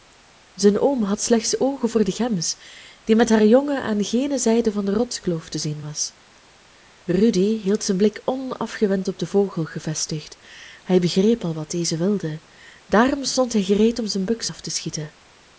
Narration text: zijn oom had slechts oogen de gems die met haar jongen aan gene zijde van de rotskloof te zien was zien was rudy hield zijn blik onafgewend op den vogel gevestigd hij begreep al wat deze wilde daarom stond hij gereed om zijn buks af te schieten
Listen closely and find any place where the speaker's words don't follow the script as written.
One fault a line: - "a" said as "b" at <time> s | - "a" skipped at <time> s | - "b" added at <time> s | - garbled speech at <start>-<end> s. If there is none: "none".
- "voor" added at 1.9 s
- "zien was" skipped at 6.1 s